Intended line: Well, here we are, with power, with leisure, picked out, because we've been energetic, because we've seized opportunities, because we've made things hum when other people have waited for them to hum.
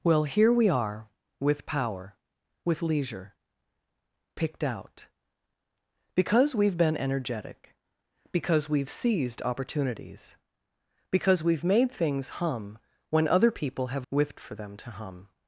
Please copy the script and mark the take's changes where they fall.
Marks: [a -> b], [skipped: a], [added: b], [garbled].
Well, here we are, with power, with leisure, picked out, because we've been energetic, because we've seized opportunities, because we've made things hum when other people have [waited -> with] for them to hum.